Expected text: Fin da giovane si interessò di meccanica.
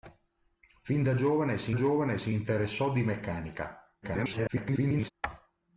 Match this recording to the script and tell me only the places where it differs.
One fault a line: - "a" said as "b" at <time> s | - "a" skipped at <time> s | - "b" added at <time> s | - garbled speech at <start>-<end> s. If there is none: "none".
- "giovane si" added at 1.7 s
- garbled speech at 4.0-5.1 s